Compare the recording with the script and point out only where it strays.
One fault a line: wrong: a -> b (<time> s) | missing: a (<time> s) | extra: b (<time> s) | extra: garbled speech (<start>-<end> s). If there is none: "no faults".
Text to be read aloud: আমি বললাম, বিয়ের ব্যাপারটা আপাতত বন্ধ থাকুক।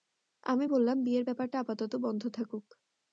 no faults